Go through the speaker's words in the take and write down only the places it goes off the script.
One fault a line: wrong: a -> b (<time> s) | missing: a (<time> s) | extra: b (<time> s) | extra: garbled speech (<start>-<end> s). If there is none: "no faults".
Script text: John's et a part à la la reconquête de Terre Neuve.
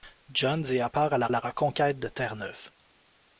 no faults